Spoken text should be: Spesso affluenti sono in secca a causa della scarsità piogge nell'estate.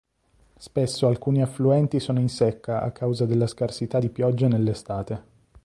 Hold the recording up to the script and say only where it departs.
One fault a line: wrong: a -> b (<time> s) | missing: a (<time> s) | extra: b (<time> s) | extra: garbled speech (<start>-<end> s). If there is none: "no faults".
extra: alcuni (1.1 s)
extra: di (4.0 s)